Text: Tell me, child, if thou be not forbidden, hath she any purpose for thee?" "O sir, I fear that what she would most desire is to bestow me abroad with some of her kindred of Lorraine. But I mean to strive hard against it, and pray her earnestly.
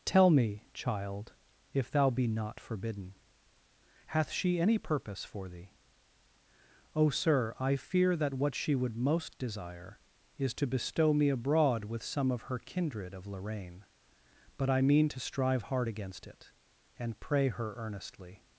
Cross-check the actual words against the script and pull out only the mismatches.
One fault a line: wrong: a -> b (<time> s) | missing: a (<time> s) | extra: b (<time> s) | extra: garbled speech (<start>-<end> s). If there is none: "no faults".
no faults